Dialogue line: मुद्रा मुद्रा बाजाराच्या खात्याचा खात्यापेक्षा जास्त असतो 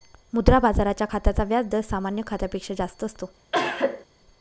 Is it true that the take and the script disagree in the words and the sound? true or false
true